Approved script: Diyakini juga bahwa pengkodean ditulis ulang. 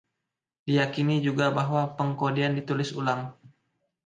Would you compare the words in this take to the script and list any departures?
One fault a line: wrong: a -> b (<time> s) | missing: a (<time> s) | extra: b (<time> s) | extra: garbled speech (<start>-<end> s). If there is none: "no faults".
no faults